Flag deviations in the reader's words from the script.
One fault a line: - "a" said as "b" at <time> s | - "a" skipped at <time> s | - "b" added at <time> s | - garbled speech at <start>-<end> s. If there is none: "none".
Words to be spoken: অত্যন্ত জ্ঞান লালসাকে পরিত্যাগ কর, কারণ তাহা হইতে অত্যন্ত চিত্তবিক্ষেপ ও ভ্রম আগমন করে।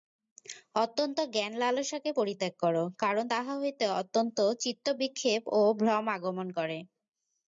none